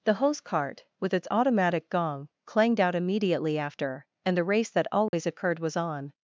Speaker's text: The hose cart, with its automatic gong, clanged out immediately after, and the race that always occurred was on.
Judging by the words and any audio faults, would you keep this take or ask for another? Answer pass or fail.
fail